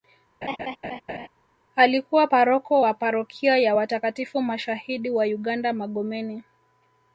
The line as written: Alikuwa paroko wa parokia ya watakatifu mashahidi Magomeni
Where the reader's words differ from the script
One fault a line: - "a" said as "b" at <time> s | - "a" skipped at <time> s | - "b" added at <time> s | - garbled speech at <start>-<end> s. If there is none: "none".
- "wa uganda" added at 5.1 s